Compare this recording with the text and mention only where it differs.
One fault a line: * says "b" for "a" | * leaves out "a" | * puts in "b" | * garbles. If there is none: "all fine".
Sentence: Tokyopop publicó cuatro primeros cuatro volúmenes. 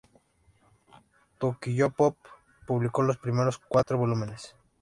* says "los" for "cuatro"